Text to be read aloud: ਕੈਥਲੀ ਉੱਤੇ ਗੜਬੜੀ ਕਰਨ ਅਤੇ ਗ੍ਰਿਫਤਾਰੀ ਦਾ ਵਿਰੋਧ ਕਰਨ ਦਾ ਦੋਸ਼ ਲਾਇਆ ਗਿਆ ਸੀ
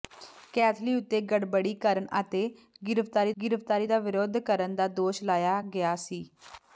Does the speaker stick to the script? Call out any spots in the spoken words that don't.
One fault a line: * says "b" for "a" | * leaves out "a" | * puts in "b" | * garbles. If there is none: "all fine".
* puts in "ਗ੍ਰਿਫਤਾਰੀ"